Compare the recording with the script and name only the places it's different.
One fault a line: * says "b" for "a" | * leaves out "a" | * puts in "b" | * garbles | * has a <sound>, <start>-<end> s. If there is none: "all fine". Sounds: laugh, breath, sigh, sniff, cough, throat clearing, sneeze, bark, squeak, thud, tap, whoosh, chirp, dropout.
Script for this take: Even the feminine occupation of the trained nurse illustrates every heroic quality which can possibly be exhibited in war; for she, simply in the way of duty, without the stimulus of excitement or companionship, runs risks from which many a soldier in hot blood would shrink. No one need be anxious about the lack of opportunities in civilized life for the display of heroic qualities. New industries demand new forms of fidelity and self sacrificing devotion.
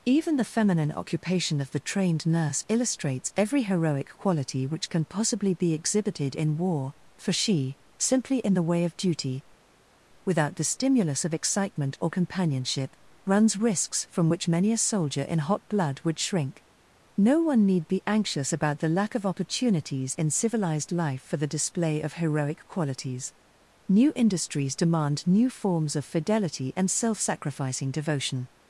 all fine